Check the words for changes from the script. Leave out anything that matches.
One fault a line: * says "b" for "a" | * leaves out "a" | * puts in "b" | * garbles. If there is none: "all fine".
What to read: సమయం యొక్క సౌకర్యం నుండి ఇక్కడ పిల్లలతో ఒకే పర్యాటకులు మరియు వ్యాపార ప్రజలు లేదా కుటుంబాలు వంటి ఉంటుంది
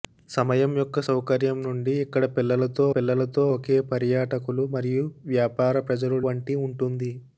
* puts in "పిల్లలతో"
* leaves out "లేదా కుటుంబాలు"